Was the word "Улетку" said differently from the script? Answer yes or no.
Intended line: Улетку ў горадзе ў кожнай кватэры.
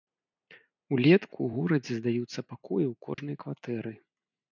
no